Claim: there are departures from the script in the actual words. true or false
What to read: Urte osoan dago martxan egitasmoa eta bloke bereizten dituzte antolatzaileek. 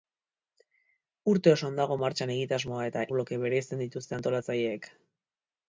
false